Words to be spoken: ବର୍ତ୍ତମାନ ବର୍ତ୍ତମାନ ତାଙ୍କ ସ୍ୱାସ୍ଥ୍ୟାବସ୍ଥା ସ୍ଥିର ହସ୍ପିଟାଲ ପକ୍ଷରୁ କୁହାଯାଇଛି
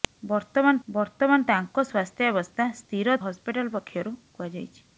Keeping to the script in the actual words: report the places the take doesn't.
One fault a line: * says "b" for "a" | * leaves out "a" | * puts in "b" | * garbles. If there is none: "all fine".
all fine